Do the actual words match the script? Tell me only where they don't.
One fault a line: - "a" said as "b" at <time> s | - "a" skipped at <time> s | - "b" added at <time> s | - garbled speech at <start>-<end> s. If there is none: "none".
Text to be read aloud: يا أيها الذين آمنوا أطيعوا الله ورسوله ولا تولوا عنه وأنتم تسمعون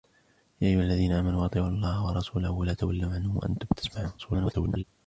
- garbled speech at 4.2-4.8 s